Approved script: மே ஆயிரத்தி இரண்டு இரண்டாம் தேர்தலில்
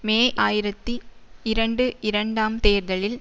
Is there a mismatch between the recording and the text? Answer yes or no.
no